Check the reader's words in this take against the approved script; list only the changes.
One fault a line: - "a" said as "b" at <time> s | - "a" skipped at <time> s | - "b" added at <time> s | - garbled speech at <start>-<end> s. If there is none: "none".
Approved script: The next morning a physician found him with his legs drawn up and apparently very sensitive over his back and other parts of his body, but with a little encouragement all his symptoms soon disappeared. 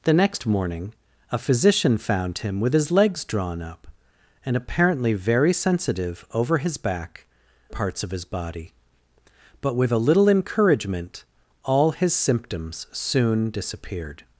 - "and other" skipped at 7.2 s